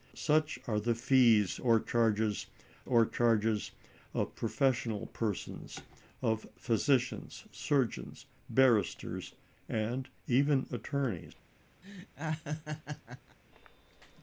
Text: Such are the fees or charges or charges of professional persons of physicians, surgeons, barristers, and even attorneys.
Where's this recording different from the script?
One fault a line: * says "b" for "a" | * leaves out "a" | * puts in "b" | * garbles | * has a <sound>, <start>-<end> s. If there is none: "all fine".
* has a laugh, 11.8-13.4 s